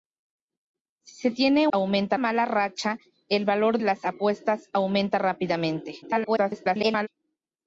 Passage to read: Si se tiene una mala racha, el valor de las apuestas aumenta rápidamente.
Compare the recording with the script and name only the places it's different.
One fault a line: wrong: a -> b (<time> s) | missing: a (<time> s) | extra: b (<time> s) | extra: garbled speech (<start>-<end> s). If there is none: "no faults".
wrong: una -> aumenta (1.7 s)
missing: de (3.8 s)
extra: garbled speech (6.0-7.1 s)